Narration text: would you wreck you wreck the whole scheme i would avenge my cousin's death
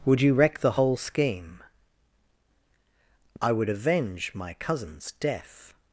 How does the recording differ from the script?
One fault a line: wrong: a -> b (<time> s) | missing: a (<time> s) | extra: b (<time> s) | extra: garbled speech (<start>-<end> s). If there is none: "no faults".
missing: you wreck (0.6 s)